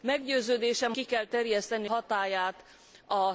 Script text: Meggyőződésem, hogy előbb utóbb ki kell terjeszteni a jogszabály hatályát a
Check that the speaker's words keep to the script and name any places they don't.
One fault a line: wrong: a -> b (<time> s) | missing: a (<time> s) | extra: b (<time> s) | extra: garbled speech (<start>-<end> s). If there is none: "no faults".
missing: hogy előbb utóbb (0.9 s)
missing: jogszabály (1.9 s)